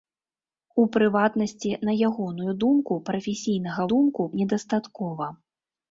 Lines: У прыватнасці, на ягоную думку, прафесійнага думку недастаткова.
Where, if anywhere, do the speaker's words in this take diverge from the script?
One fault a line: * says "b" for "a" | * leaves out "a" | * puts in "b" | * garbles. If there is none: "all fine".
all fine